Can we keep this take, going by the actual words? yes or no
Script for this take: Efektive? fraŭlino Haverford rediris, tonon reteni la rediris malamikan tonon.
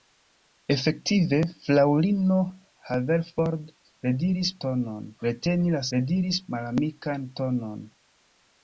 yes